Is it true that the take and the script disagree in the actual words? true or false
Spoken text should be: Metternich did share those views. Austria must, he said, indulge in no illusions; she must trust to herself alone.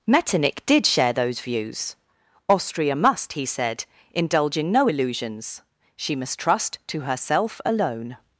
false